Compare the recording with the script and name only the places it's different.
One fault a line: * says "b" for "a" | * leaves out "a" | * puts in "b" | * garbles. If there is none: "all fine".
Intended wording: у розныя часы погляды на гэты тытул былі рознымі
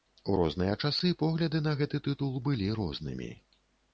all fine